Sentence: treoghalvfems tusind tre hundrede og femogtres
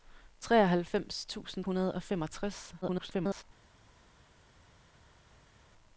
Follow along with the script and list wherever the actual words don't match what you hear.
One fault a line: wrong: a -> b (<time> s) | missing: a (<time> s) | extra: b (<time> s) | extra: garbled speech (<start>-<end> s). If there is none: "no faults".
missing: tre (1.6 s)
extra: garbled speech (2.8-3.4 s)